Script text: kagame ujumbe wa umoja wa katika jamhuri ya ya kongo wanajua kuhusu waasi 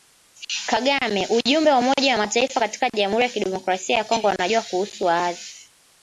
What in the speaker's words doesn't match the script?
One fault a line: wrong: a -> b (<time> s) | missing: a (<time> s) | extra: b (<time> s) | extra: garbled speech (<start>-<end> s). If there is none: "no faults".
extra: mataifa (2.2 s)
extra: kidemokrasia (3.3 s)